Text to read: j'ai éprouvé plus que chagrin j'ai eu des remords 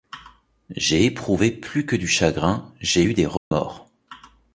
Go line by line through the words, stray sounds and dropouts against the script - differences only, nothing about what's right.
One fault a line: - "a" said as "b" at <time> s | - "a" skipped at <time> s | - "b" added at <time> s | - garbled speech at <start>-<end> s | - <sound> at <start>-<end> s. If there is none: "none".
- "du" added at 1.9 s
- dropout at 3.4-3.5 s